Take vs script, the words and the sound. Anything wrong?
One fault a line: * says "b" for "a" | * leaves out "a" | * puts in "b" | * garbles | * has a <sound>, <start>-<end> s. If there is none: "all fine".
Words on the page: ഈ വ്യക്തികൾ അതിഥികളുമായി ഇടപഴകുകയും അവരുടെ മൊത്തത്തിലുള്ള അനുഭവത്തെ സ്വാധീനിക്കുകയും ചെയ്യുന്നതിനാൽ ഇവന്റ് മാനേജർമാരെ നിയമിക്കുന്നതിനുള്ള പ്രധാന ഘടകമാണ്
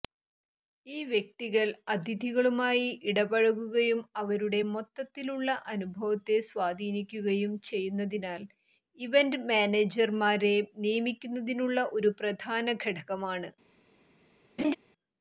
* puts in "ഒരു"
* has a laugh, 14.6-14.7 s